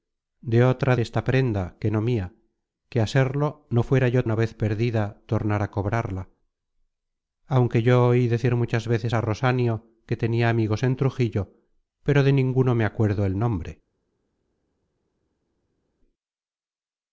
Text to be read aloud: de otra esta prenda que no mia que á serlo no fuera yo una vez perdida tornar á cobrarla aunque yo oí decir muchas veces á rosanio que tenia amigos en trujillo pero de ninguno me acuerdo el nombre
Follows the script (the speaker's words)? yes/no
yes